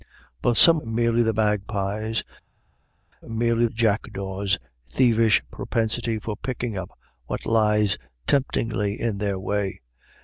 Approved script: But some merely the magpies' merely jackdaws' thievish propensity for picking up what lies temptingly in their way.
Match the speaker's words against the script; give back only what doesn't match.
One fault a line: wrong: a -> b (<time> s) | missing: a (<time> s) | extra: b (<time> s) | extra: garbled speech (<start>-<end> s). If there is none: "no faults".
no faults